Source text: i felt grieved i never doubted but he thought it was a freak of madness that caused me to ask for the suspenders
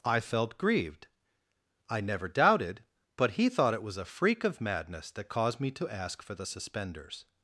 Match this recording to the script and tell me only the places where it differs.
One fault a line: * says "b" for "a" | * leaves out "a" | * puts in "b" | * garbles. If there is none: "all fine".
all fine